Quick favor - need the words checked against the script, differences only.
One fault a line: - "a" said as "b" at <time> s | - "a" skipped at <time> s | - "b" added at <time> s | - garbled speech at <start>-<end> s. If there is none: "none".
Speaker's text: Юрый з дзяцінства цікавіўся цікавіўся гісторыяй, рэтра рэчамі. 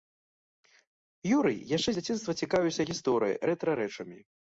- "яшчэ" added at 1.8 s
- "цікавіўся" skipped at 2.8 s